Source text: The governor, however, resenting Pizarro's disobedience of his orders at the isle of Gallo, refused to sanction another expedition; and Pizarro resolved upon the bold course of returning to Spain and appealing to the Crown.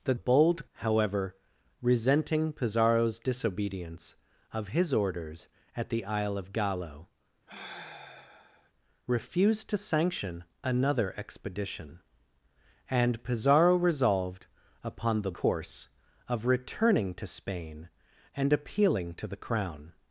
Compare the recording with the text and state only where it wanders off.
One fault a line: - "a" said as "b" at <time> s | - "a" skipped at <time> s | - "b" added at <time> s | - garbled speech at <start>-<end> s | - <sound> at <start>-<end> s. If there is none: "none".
- "governor" said as "bold" at 0.1 s
- sigh at 7.5-8.7 s
- "bold" skipped at 15.3 s